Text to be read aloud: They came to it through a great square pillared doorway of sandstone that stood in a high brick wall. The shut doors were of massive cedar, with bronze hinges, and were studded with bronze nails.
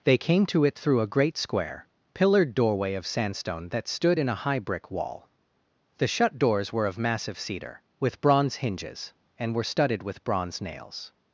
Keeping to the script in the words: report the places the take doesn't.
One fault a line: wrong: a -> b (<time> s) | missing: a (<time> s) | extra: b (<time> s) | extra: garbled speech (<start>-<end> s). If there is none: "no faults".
no faults